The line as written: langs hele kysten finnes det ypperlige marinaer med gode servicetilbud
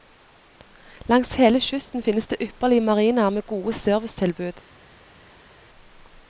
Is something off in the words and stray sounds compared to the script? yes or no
no